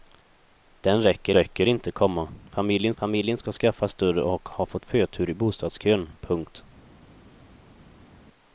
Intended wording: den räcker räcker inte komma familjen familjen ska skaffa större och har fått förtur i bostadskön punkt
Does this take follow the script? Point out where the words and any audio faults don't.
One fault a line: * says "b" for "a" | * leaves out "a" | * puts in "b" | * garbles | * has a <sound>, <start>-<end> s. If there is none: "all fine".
all fine